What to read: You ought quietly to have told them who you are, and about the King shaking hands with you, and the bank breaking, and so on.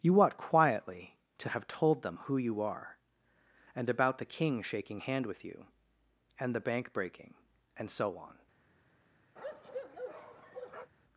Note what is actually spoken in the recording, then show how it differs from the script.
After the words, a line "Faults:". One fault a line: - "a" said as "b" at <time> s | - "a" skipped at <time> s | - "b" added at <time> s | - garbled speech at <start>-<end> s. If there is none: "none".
You ought quietly to have told them who you are, and about the King shaking hand with you, and the bank breaking, and so on.
Faults:
- "hands" said as "hand" at 5.0 s